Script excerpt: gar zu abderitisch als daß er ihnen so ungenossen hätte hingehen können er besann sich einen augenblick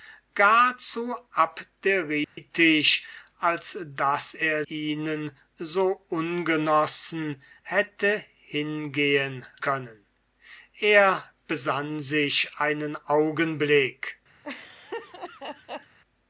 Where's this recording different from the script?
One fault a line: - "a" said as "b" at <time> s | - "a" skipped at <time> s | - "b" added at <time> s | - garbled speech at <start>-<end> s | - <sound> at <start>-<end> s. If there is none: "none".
- dropout at 2.2-2.4 s
- laugh at 14.4-16.0 s